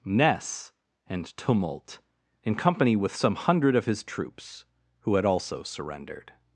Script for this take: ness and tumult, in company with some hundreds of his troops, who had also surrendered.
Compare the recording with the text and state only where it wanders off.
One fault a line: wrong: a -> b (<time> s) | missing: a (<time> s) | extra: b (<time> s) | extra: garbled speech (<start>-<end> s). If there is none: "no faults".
wrong: hundreds -> hundred (3.4 s)